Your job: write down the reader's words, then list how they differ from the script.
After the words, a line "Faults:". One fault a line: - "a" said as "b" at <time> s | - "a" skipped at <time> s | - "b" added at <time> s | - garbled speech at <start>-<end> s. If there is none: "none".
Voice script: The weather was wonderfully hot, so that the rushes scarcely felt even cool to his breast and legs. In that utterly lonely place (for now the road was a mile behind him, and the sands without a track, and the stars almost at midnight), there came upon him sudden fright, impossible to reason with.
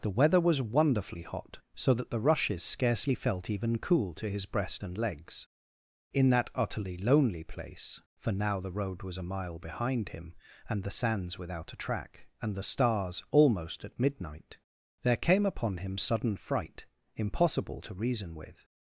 The weather was wonderfully hot, so that the rushes scarcely felt even cool to his breast and legs. In that utterly lonely place (for now the road was a mile behind him, and the sands without a track, and the stars almost at midnight), there came upon him sudden fright, impossible to reason with.
Faults:
none